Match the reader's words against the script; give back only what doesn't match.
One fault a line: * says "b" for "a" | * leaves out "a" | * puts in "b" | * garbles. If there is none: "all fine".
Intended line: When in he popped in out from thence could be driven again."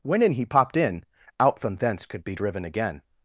all fine